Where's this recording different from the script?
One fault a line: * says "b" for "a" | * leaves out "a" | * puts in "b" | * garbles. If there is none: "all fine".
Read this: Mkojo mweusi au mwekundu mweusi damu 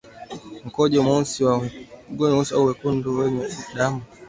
* says "wenye" for "mweusi"